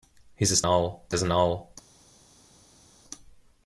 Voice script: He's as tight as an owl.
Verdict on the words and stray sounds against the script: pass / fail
fail